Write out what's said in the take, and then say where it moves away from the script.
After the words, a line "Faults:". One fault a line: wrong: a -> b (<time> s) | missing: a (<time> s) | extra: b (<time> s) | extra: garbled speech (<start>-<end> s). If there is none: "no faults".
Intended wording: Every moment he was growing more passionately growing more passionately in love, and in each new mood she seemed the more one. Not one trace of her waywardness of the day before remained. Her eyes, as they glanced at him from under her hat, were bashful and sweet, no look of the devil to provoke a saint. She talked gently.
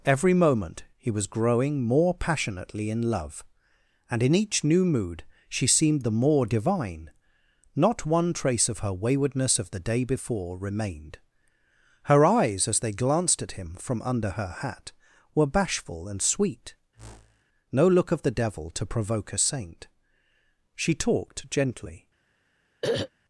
Every moment he was growing more passionately in love, and in each new mood she seemed the more divine. Not one trace of her waywardness of the day before remained. Her eyes, as they glanced at him from under her hat, were bashful and sweet, no look of the devil to provoke a saint. She talked gently.
Faults:
missing: growing more passionately (2.9 s)
wrong: one -> divine (6.5 s)